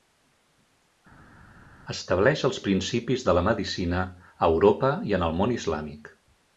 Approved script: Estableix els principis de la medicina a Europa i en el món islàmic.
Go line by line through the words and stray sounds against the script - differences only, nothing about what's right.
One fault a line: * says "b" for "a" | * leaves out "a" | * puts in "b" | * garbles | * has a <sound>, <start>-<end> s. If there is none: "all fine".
all fine